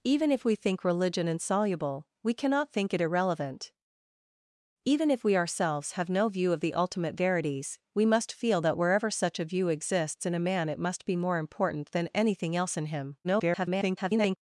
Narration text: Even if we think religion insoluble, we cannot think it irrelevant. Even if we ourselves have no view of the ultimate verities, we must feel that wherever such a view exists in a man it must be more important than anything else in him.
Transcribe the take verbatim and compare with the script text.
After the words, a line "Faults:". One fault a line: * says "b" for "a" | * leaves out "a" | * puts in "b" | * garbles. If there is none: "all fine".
Even if we think religion insoluble, we cannot think it irrelevant. Even if we ourselves have no view of the ultimate verities, we must feel that wherever such a view exists in a man it must be more important than anything else in him. [garbled]
Faults:
* garbles